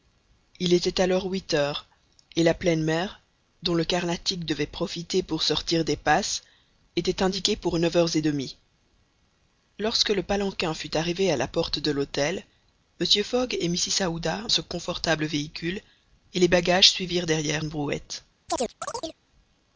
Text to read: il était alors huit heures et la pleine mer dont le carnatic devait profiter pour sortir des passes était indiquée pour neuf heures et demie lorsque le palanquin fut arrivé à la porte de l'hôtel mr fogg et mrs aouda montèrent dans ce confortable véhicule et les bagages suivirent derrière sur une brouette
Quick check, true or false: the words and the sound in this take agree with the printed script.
false